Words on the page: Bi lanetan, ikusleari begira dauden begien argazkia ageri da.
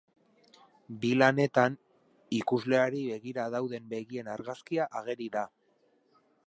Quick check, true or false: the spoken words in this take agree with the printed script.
true